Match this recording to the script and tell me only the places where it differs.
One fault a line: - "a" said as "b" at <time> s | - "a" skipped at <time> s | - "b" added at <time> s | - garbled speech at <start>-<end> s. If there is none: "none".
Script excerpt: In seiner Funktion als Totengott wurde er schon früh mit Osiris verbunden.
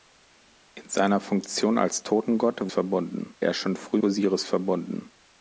- "wurde" said as "verbunden" at 2.7 s
- "mit" skipped at 4.0 s